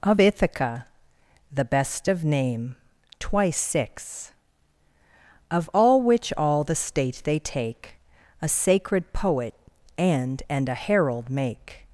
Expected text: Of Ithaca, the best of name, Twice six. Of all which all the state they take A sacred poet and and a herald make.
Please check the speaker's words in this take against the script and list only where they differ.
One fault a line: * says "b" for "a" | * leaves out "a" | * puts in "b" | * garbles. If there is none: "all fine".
all fine